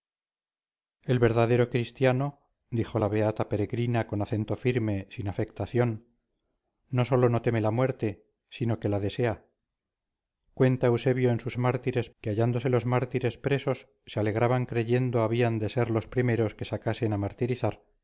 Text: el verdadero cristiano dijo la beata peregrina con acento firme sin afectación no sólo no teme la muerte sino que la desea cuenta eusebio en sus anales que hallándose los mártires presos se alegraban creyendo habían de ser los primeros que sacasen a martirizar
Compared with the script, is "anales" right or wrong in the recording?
wrong